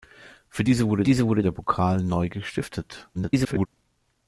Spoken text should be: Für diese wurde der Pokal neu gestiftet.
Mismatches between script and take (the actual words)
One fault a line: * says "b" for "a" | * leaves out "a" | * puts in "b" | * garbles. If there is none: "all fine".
* puts in "diese wurde"
* garbles